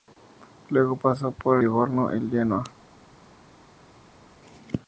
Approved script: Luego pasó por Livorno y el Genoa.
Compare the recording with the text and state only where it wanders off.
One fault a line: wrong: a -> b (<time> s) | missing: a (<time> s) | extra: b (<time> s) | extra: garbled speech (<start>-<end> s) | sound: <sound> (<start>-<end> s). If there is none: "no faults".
no faults